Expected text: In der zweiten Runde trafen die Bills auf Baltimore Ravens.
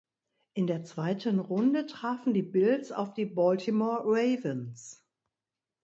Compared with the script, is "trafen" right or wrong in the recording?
right